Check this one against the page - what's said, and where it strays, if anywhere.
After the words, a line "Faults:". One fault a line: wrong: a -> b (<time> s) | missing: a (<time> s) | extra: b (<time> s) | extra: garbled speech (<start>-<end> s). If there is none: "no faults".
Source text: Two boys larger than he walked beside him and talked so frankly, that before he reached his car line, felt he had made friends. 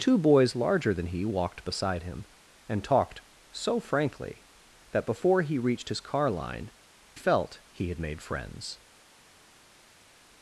Two boys larger than he walked beside him and talked so frankly, that before he reached his car line, felt he had made friends.
Faults:
no faults